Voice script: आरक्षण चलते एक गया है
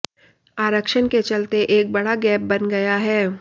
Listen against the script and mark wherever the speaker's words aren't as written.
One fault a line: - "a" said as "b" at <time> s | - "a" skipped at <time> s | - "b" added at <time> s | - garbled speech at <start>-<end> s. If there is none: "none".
- "के" added at 1.1 s
- "बड़ा गैप बन" added at 1.9 s